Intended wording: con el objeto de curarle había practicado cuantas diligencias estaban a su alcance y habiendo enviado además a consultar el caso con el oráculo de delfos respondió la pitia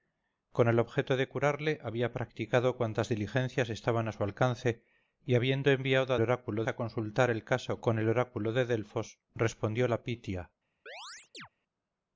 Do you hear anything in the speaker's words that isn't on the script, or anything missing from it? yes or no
yes